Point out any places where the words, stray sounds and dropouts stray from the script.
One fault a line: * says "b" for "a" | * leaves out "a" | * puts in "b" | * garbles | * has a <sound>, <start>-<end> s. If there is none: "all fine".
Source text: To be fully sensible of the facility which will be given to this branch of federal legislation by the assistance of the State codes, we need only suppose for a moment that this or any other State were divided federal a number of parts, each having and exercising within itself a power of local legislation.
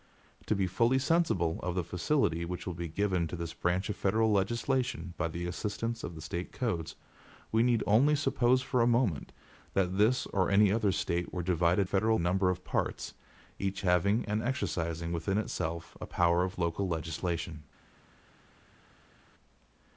all fine